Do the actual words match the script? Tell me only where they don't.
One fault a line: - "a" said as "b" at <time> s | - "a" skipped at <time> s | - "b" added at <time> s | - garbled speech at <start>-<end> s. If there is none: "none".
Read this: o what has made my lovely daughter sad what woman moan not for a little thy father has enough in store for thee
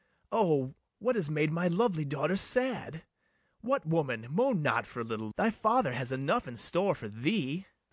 none